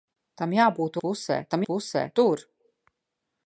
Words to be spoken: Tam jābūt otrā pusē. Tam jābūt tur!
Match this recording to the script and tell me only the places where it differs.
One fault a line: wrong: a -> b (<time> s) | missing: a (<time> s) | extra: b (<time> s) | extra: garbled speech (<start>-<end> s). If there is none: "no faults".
missing: otrā (1.0 s)
wrong: jābūt -> pusē (1.7 s)